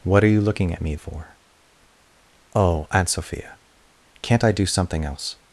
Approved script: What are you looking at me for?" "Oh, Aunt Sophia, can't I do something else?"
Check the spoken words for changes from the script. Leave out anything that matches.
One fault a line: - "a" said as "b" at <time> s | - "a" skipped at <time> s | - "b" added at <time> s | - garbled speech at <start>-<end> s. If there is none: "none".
none